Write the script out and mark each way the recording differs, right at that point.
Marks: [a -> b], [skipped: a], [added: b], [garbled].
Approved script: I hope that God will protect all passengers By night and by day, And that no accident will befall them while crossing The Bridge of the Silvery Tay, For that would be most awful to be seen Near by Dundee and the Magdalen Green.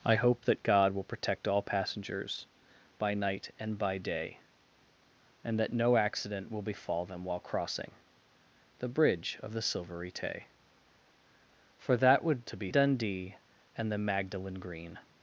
I hope that God will protect all passengers By night and by day, And that no accident will befall them while crossing The Bridge of the Silvery Tay, For that would [skipped: be most awful] to be [skipped: seen Near by] Dundee and the Magdalen Green.